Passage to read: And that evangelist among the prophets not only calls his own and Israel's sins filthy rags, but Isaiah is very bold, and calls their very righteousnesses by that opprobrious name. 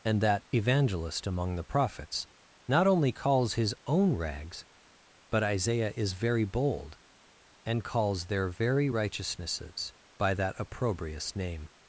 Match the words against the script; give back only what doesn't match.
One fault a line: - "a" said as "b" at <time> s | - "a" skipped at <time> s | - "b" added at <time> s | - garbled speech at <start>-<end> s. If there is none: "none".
- "and Israel's sins filthy" skipped at 4.1 s